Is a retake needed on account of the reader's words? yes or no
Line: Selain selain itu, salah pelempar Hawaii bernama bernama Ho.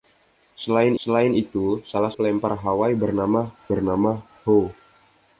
no